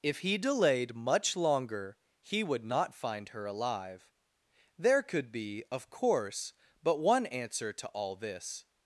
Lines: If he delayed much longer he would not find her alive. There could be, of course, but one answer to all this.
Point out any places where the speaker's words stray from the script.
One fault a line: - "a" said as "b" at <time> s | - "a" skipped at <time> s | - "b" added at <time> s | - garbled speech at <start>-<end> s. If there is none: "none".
none